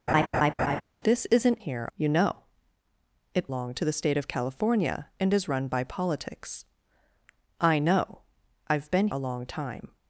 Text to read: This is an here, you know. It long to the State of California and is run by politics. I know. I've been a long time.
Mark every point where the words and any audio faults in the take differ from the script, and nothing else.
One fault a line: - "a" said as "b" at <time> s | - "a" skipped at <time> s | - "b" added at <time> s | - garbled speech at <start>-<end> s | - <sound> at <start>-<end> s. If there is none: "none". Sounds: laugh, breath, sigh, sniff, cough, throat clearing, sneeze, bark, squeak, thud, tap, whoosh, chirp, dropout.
- laugh at 0.1-0.8 s